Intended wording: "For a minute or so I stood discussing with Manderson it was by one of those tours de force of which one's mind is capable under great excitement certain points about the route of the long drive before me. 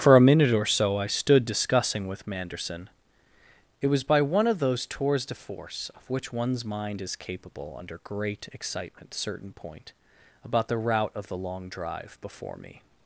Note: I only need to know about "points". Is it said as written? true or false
false